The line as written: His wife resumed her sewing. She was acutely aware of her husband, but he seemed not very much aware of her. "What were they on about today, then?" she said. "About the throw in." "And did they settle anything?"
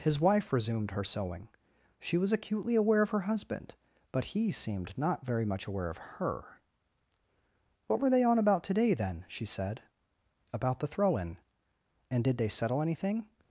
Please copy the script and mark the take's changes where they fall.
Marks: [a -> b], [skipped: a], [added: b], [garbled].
His wife resumed her sewing. She was acutely aware of her husband, but he seemed not very much aware of her. "What were they on about today, then?" she said. "About the throw in." "And did they settle anything?"